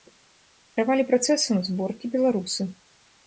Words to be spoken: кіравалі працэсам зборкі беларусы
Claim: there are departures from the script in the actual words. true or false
false